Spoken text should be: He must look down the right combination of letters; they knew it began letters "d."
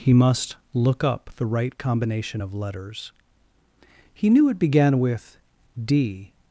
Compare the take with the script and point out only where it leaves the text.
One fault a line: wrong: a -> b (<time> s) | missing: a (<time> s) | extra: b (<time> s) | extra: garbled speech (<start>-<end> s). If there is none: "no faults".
wrong: down -> up (1.0 s)
wrong: they -> he (4.1 s)
wrong: letters -> with (5.0 s)